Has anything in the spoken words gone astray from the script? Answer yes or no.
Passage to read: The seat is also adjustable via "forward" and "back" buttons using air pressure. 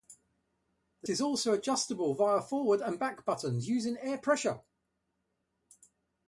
yes